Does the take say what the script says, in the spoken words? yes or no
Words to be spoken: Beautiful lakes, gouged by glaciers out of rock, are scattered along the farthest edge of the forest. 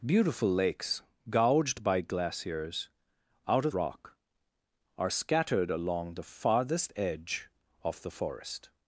yes